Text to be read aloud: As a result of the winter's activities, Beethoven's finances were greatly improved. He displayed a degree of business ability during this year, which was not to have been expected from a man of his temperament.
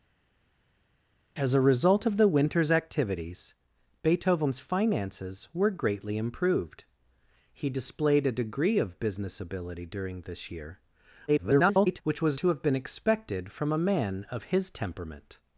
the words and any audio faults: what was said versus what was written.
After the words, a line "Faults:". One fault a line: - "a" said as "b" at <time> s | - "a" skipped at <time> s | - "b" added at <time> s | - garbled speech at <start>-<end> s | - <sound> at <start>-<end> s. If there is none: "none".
As a result of the winter's activities, Beethoven's finances were greatly improved. He displayed a degree of business ability during this year, [garbled] which was to have been expected from a man of his temperament.
Faults:
- garbled speech at 11.3-12.0 s
- "not" skipped at 12.4 s